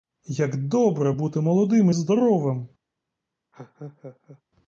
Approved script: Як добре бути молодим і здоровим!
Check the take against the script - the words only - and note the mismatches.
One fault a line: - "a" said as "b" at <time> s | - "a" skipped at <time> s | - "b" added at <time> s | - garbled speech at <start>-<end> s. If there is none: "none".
none